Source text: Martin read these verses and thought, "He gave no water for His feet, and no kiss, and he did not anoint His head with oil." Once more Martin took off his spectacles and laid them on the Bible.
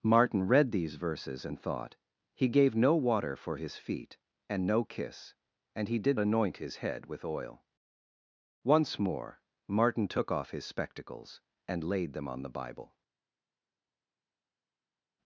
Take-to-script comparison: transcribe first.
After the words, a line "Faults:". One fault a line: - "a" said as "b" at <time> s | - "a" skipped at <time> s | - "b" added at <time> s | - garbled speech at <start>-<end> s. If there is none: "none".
Martin read these verses and thought, "He gave no water for His feet, and no kiss, and he did anoint His head with oil." Once more Martin took off his spectacles and laid them on the Bible.
Faults:
- "not" skipped at 6.2 s